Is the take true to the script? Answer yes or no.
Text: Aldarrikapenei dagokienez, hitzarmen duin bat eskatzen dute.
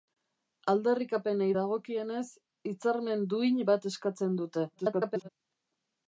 no